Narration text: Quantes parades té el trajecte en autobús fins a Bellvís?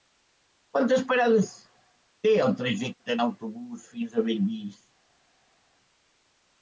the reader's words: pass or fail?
pass